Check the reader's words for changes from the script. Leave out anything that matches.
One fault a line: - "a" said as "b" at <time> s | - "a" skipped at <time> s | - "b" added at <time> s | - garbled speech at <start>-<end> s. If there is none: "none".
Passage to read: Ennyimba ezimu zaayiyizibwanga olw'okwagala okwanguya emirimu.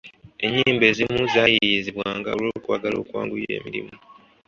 none